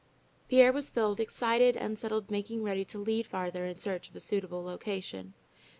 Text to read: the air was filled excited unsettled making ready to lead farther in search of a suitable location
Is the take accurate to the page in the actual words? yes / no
yes